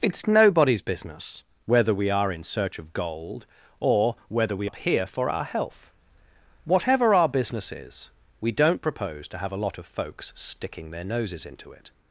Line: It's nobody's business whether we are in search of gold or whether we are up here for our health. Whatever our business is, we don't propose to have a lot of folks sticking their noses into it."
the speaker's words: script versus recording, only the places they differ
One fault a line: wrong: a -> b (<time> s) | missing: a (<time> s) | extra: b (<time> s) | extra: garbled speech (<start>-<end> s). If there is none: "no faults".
missing: are (4.7 s)